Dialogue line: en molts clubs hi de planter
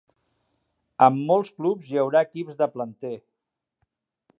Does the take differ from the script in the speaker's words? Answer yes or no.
yes